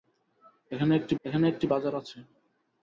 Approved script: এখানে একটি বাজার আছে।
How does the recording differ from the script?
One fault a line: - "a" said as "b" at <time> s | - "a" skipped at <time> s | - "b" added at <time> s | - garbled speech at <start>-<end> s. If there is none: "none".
- "এখানে একটি" added at 1.2 s